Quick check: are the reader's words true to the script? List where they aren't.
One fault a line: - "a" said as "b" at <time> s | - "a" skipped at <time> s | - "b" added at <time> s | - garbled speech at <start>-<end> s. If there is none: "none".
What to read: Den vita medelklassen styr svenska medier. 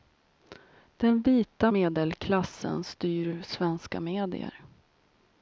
none